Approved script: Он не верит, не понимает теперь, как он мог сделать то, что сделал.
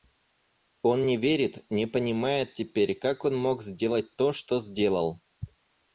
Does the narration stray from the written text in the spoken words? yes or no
no